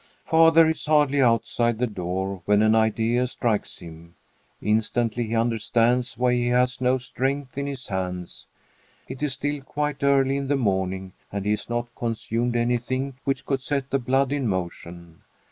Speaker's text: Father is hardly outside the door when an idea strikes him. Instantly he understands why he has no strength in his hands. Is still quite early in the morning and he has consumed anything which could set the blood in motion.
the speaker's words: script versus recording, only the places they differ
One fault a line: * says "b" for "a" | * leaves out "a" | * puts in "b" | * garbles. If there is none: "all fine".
* puts in "It"
* puts in "not"